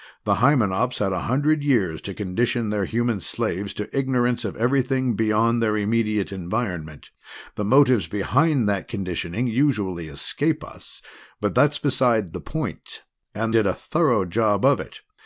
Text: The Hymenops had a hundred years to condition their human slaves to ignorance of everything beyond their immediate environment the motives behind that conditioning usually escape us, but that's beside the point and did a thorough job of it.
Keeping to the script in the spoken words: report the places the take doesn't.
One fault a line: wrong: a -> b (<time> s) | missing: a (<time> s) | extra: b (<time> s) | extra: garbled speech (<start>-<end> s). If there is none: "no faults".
no faults